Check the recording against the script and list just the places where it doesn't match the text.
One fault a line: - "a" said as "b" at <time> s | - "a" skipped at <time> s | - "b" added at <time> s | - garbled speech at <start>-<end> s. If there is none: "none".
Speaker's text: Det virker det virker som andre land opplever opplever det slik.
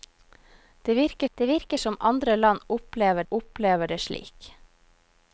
none